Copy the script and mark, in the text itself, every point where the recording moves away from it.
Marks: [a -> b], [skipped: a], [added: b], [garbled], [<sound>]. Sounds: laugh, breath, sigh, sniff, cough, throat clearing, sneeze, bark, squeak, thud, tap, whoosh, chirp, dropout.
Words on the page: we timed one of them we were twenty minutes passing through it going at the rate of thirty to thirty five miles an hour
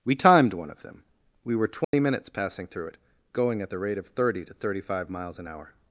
we timed one of them we were twenty [dropout] minutes passing through it going at the rate of thirty to thirty five miles an hour